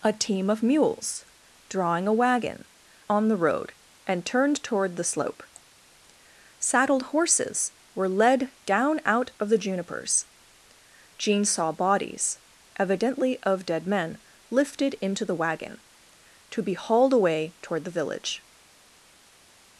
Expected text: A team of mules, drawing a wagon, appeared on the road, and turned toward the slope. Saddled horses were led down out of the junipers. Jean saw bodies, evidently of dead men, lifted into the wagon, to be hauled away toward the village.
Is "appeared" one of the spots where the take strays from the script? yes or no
yes